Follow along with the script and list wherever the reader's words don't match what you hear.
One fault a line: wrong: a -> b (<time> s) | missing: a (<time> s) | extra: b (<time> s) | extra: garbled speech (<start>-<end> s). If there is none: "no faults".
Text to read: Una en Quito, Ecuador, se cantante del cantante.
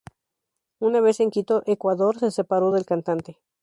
extra: vez (1.0 s)
wrong: cantante -> separó (2.3 s)